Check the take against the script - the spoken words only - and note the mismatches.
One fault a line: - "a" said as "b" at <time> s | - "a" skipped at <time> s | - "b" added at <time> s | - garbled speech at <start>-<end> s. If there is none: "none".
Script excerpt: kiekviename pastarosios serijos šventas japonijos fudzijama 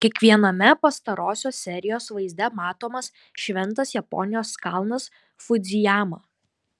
- "vaizde matomas" added at 2.2 s
- "kalnas" added at 4.7 s